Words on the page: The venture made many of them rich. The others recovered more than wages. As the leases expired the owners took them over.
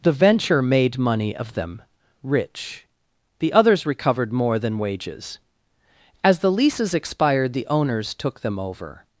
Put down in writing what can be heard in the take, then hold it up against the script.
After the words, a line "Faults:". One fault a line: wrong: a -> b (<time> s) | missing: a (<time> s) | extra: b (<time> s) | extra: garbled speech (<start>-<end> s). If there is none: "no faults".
The venture made money of them rich. The others recovered more than wages. As the leases expired the owners took them over.
Faults:
wrong: many -> money (1.0 s)